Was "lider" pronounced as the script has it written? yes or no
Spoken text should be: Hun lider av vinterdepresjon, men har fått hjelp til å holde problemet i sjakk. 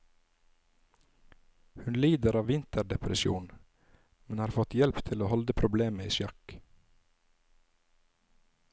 yes